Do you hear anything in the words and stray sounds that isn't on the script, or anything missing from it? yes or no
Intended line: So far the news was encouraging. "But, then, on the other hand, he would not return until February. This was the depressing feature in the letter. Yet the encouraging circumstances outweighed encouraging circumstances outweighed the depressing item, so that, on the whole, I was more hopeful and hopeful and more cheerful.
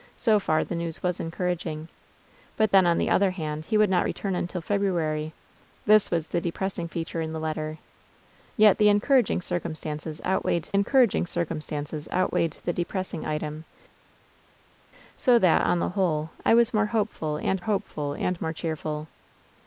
no